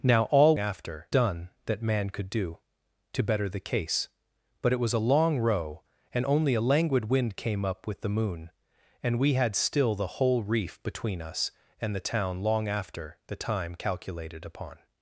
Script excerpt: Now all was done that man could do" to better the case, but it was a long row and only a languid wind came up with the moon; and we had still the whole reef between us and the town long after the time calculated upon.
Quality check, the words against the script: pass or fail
fail